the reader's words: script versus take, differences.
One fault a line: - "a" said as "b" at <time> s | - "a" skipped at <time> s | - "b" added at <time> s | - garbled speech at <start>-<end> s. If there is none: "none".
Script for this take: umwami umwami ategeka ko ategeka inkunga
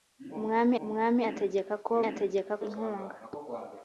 none